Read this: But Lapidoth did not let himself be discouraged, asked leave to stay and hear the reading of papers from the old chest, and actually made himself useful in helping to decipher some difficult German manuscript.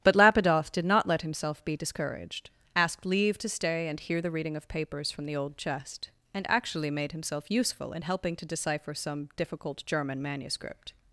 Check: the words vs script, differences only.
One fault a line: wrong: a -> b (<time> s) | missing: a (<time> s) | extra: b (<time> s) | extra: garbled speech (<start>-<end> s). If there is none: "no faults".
no faults